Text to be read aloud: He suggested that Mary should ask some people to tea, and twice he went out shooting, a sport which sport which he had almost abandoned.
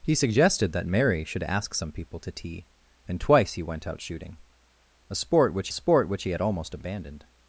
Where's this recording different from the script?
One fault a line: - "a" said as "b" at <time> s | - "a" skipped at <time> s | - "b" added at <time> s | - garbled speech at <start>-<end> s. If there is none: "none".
none